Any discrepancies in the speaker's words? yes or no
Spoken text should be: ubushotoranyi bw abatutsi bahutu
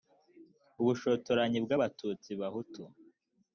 no